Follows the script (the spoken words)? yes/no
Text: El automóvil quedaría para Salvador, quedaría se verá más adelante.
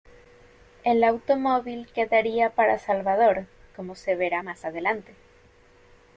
no